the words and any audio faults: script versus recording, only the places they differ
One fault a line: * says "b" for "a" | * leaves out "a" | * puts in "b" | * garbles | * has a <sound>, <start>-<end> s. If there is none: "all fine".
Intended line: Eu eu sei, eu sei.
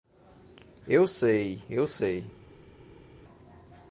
* leaves out "eu"